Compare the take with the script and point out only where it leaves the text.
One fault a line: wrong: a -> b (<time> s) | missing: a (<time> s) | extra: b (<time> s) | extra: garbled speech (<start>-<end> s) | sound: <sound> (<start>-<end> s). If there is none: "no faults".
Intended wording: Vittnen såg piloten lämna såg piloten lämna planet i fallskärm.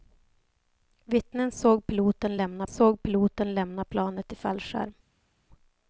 no faults